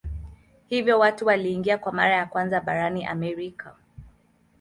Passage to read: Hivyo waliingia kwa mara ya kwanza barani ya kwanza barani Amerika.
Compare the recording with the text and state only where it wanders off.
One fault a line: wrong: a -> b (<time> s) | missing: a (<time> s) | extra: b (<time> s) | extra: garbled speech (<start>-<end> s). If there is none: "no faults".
extra: watu (1.0 s)
missing: ya kwanza barani (3.0 s)